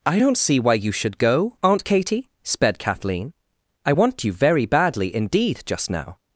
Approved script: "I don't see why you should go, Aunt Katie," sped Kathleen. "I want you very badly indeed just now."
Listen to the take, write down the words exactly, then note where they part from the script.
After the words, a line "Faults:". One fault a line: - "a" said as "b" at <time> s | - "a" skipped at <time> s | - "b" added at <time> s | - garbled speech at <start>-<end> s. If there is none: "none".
"I don't see why you should go, Aunt Katie," sped Kathleen. "I want you very badly indeed just now."
Faults:
none